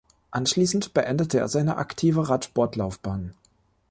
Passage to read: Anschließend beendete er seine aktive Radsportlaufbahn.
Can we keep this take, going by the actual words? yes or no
yes